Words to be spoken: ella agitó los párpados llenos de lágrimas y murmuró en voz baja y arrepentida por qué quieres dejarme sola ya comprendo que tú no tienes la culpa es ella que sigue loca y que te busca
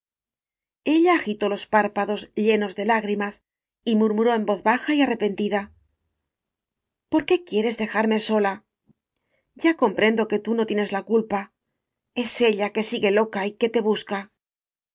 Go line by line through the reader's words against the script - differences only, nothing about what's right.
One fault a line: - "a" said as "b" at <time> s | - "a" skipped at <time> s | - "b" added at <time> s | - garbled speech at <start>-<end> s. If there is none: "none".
none